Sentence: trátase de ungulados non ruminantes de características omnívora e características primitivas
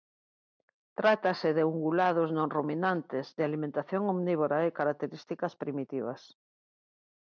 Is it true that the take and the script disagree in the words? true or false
true